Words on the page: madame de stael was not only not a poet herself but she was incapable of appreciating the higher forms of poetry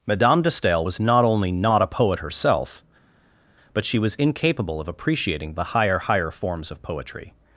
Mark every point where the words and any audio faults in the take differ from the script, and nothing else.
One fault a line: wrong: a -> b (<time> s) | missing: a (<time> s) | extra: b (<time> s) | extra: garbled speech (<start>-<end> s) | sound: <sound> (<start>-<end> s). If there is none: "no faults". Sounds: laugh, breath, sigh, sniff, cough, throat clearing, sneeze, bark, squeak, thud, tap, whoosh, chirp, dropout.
extra: higher (6.0 s)